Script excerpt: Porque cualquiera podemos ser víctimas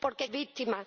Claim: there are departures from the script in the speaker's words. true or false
true